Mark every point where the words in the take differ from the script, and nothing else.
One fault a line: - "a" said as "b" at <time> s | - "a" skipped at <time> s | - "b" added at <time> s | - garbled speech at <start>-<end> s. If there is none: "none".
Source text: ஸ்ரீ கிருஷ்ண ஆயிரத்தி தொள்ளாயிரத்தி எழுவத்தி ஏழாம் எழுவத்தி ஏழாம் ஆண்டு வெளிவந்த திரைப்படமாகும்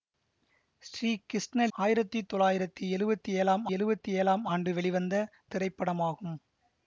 none